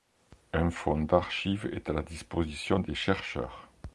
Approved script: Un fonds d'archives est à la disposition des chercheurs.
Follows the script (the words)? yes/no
yes